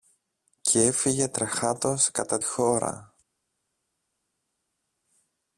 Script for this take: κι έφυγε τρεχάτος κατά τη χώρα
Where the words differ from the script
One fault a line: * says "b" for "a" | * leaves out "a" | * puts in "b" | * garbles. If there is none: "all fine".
* leaves out "τη"